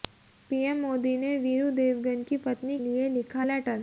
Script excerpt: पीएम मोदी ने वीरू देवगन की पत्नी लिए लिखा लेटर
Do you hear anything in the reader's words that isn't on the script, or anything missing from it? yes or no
no